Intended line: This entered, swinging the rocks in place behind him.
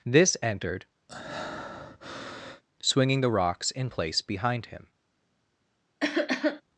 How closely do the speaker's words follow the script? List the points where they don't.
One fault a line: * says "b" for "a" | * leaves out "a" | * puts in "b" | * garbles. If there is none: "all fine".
all fine